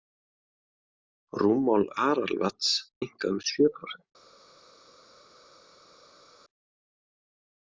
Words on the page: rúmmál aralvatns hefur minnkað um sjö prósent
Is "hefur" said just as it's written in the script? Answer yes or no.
no